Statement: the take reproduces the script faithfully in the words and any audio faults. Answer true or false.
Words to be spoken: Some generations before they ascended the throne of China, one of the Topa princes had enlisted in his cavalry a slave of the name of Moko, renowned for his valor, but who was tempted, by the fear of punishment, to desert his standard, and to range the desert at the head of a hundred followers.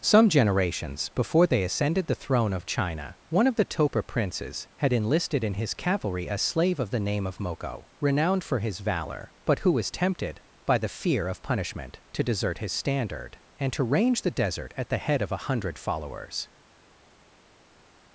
true